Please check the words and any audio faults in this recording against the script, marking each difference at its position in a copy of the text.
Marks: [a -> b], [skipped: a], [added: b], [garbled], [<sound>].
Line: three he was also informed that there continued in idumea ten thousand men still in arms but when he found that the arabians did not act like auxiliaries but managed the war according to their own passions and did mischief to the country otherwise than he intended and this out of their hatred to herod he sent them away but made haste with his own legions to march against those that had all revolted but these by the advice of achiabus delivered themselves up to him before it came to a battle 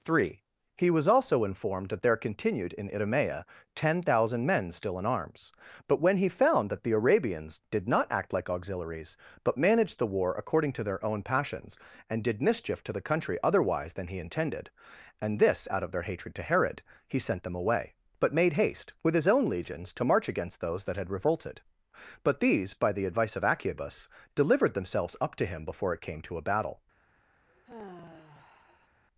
three he was also informed that there continued in idumea ten thousand men still in arms but when he found that the arabians did not act like auxiliaries but managed the war according to their own passions and did mischief to the country otherwise than he intended and this out of their hatred to herod he sent them away but made haste with his own legions to march against those that had [skipped: all] revolted but these by the advice of achiabus delivered themselves up to him before it came to a battle [sigh]